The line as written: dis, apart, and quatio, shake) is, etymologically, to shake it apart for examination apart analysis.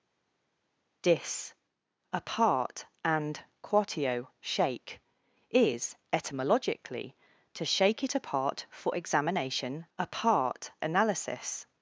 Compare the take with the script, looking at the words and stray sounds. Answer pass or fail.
pass